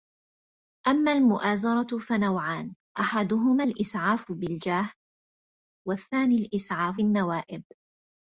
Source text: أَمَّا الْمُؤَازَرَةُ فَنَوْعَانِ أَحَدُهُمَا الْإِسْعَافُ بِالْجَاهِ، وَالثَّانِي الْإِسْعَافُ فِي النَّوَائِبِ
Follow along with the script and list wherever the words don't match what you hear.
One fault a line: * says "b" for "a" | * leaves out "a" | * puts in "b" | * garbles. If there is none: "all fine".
* leaves out "فِي"